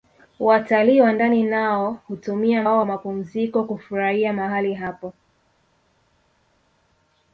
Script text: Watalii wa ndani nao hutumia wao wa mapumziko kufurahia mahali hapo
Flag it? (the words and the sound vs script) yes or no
no